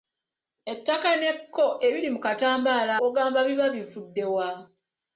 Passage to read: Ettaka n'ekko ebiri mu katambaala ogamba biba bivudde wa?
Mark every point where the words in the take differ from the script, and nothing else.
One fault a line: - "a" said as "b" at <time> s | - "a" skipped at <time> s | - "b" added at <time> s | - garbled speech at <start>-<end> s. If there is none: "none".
none